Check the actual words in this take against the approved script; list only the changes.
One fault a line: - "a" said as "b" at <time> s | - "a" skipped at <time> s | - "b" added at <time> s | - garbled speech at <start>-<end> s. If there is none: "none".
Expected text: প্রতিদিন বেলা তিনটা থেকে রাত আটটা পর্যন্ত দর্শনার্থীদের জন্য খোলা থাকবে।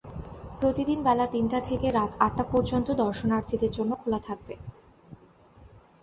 none